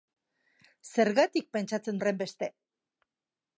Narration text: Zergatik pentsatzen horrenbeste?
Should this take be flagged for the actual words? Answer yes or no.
no